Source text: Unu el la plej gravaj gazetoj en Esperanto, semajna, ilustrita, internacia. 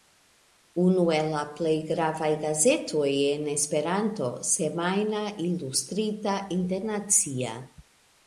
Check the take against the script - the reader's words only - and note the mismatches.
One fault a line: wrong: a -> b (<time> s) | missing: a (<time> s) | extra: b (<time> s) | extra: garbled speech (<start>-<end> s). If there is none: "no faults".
no faults